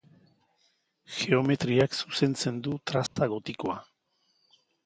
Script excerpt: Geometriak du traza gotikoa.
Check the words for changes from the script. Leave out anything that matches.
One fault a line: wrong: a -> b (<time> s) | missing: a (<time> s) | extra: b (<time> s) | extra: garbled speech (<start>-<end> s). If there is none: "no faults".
extra: zuzentzen (2.0 s)